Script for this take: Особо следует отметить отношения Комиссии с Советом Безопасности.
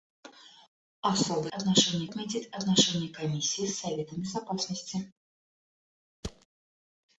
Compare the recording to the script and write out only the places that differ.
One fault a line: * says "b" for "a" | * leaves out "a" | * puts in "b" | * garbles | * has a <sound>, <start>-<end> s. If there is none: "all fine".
* says "отношения" for "следует"
* has a thud, 6.2-6.5 s